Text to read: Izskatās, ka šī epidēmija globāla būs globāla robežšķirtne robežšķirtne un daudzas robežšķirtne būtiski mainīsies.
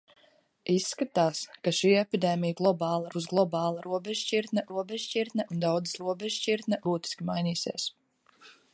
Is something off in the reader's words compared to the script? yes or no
no